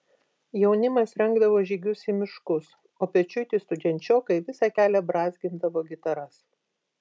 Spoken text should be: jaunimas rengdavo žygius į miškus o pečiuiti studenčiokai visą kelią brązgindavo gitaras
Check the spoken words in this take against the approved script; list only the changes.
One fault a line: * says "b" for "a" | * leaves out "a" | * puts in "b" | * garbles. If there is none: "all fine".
all fine